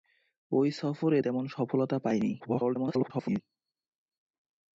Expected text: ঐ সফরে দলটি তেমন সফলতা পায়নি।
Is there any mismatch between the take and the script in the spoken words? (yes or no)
yes